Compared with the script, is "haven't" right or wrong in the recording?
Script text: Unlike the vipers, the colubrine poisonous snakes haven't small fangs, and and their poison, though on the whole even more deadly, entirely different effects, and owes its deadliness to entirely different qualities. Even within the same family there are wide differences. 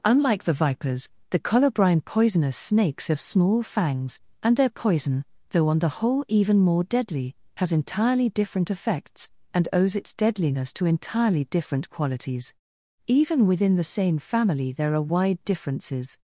wrong